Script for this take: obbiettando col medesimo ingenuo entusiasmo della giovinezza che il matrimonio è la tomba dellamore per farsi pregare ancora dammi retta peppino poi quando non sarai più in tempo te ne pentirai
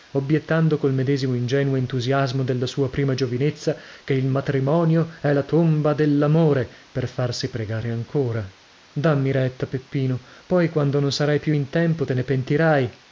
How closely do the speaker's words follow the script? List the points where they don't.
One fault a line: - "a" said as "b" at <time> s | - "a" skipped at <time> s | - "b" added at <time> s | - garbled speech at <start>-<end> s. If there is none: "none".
- "sua prima" added at 2.6 s